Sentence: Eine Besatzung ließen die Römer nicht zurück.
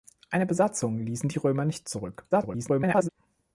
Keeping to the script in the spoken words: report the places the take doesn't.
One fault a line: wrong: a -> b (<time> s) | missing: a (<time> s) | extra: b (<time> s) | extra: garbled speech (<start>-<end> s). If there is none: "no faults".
extra: garbled speech (2.3-3.1 s)